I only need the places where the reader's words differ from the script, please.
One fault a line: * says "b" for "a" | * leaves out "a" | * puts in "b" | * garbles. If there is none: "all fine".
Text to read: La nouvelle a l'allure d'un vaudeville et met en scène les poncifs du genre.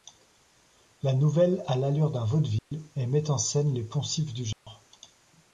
all fine